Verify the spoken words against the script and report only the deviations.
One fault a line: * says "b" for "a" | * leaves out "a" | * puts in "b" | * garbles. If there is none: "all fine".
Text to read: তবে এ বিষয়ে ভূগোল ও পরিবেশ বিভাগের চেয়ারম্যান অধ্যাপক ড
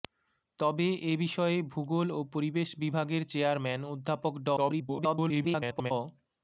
* garbles